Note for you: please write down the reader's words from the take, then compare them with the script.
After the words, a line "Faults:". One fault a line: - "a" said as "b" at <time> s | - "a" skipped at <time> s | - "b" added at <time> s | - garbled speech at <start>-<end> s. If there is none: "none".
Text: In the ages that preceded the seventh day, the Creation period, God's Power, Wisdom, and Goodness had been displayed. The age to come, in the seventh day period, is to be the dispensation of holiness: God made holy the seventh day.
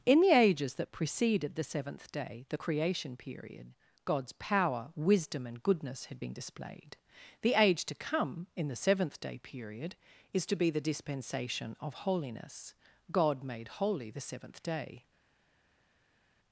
In the ages that preceded the seventh day, the Creation period, God's Power, Wisdom, and Goodness had been displayed. The age to come, in the seventh day period, is to be the dispensation of holiness: God made holy the seventh day.
Faults:
none